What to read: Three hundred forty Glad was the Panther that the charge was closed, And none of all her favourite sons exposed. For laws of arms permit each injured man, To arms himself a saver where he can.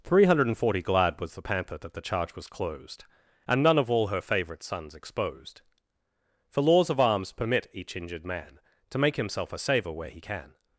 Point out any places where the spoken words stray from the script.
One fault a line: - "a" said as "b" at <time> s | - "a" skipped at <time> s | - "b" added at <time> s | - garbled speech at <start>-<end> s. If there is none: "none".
- "arms" said as "make" at 9.0 s